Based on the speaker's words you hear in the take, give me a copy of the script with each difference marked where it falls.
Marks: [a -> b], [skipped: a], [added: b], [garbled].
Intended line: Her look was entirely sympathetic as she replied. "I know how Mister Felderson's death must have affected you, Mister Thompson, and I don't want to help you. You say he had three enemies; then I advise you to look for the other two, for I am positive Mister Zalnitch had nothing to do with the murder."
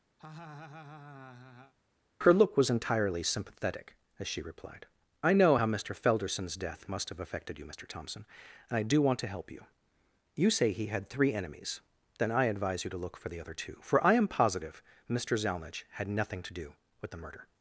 Her look was entirely sympathetic as she replied. "I know how Mister Felderson's death must have affected you, Mister Thompson, and I [don't -> do] want to help you. You say he had three enemies; then I advise you to look for the other two, for I am positive Mister Zalnitch had nothing to do with the murder."